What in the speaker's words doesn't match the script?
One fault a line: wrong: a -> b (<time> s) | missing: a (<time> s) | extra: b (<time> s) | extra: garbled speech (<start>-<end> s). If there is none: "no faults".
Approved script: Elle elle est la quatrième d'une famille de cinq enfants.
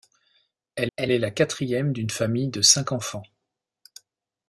no faults